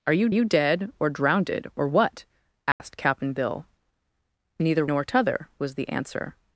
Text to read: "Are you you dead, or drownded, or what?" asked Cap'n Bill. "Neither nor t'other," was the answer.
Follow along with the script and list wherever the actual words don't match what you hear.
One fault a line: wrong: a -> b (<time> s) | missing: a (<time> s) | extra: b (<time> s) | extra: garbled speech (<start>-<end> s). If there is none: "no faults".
no faults